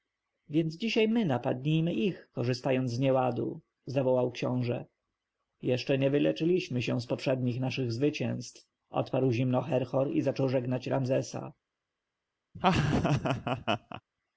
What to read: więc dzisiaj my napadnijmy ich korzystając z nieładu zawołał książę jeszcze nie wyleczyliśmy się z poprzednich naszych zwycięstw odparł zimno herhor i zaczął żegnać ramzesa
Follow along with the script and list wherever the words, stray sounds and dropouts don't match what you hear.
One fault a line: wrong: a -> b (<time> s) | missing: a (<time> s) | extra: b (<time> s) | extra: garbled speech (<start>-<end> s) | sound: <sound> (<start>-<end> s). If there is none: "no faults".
sound: laugh (12.5-14.0 s)